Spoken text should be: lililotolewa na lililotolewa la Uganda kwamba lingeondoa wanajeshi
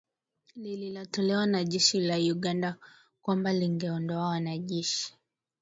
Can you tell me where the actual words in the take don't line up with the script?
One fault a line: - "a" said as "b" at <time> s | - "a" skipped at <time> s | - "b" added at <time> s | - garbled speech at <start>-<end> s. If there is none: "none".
- "lililotolewa" said as "jeshi" at 1.6 s